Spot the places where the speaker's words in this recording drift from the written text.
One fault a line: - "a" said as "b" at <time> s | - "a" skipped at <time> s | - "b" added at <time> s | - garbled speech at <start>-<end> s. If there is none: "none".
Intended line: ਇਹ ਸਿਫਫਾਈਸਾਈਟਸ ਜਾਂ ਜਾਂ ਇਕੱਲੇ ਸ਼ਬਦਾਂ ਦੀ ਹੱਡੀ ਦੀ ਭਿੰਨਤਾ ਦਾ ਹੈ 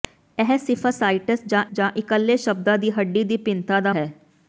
none